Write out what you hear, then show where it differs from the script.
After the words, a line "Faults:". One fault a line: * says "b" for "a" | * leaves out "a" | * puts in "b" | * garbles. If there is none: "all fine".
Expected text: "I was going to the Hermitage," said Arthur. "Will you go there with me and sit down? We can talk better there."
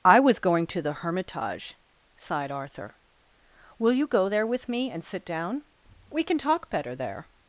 "I was going to the Hermitage," sighed Arthur. "Will you go there with me and sit down? We can talk better there."
Faults:
* says "sighed" for "said"